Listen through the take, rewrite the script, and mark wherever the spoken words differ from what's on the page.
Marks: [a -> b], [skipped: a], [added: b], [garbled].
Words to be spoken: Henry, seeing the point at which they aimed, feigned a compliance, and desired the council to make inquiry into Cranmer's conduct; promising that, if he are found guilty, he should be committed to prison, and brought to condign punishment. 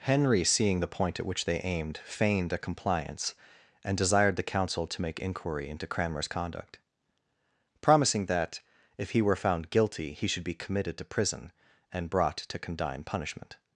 Henry, seeing the point at which they aimed, feigned a compliance, and desired the council to make inquiry into Cranmer's conduct; promising that, if he [are -> were] found guilty, he should be committed to prison, and brought to condign punishment.